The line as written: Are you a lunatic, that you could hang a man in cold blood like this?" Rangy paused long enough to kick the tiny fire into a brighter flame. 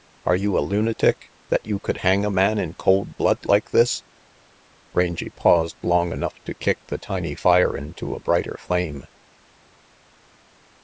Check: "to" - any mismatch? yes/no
no